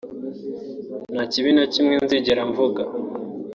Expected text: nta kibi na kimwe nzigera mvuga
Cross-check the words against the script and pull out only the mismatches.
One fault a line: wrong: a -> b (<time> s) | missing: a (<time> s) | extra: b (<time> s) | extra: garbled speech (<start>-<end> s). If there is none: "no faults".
no faults